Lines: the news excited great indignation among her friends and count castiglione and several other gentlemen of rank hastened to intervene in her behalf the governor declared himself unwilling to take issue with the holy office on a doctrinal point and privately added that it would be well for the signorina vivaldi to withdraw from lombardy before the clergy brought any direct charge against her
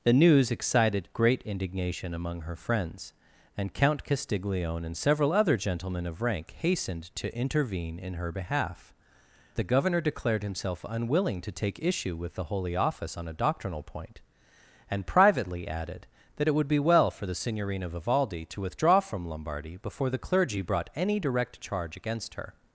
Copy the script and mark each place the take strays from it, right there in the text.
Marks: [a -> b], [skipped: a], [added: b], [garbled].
the news excited great indignation among her friends and count castiglione and several other gentlemen of rank hastened to intervene in her behalf the governor declared himself unwilling to take issue with the holy office on a doctrinal point and privately added that it would be well for the signorina vivaldi to withdraw from lombardy before the clergy brought any direct charge against her